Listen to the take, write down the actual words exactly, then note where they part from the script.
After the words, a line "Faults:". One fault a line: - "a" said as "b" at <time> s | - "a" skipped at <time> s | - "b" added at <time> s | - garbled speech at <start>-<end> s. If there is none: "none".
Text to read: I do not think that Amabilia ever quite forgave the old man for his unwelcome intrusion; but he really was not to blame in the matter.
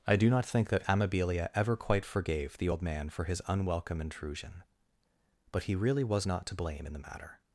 I do not think that Amabilia ever quite forgave the old man for his unwelcome intrusion; but he really was not to blame in the matter.
Faults:
none